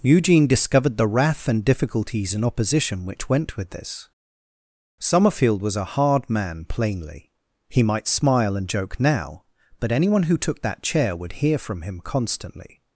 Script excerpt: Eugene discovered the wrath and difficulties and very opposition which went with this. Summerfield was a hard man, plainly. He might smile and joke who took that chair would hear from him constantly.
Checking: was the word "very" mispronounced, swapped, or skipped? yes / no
yes